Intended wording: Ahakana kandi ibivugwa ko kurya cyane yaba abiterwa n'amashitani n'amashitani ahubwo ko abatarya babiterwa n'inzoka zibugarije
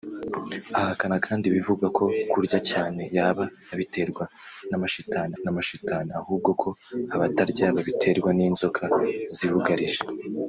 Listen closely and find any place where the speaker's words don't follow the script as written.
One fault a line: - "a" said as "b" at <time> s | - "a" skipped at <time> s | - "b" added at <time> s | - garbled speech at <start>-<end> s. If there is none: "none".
none